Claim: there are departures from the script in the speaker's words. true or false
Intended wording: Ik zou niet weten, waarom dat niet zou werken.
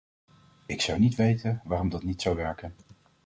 false